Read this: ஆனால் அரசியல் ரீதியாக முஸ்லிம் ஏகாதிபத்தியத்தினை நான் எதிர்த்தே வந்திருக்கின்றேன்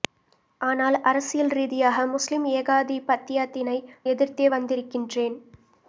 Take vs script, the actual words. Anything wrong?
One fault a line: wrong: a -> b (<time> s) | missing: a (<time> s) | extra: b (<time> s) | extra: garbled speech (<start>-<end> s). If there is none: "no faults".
missing: நான் (3.8 s)